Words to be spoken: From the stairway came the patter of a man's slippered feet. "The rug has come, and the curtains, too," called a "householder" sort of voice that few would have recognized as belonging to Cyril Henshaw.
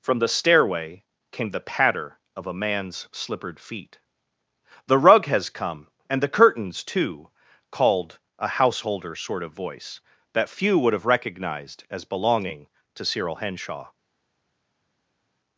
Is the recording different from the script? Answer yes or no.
no